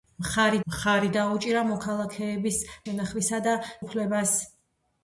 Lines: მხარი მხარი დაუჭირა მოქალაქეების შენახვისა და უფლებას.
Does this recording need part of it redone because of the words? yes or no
no